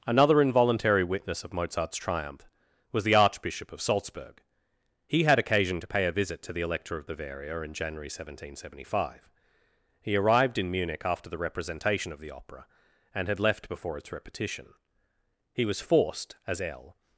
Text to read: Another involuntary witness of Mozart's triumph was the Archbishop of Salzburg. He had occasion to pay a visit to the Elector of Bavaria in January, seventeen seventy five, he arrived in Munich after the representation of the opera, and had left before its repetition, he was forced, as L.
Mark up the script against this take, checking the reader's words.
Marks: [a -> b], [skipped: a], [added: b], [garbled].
Another involuntary witness of Mozart's triumph was the Archbishop of Salzburg. He had occasion to pay a visit to the Elector of Bavaria in January, seventeen seventy five, he arrived in Munich after the representation of the opera, and had left before its repetition, he was forced, as L.